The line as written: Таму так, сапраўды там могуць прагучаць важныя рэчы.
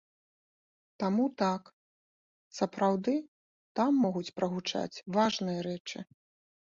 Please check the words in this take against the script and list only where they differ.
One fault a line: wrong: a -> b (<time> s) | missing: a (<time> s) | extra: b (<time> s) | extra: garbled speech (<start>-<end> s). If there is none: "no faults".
no faults